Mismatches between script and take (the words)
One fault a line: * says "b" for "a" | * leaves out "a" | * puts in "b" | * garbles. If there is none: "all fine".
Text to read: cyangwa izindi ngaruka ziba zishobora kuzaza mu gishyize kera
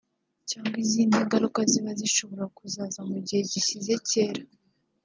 * puts in "gihe"